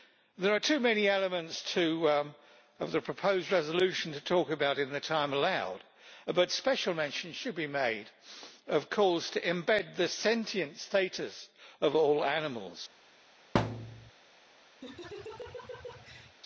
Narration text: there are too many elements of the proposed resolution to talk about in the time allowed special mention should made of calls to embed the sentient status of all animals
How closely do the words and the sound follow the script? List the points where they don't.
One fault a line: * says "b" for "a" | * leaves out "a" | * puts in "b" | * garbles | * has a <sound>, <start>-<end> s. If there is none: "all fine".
* puts in "but"
* puts in "be"
* has a thud, 13.5-14.1 s
* has a laugh, 14.8-16.4 s